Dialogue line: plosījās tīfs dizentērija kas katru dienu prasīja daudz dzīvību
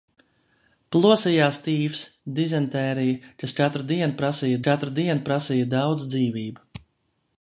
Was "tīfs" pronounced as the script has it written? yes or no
yes